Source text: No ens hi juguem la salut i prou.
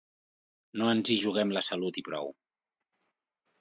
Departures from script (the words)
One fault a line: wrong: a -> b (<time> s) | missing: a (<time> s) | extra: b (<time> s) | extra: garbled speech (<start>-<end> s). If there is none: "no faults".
no faults